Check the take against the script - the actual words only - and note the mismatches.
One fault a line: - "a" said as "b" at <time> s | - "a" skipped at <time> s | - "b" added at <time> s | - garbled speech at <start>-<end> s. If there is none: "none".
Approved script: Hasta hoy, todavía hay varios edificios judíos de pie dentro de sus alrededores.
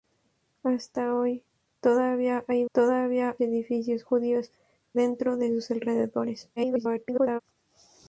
- "varios" said as "todavía" at 2.7 s
- "de pie" skipped at 4.5 s
- garbled speech at 6.6-7.4 s